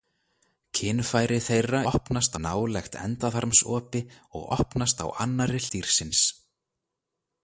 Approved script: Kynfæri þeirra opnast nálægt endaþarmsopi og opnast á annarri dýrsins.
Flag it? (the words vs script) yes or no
no